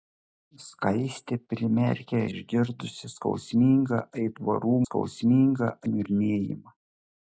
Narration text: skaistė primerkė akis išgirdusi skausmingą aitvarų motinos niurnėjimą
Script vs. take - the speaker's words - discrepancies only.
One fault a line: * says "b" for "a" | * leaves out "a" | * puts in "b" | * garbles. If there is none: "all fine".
* leaves out "akis"
* says "skausmingą" for "motinos"